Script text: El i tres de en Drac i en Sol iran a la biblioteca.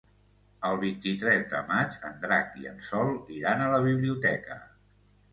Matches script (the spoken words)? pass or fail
fail